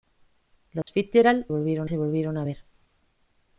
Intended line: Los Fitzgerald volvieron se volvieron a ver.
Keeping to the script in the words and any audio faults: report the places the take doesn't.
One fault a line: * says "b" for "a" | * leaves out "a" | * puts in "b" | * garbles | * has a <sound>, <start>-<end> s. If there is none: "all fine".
* has a dropout, 0.8-0.9 s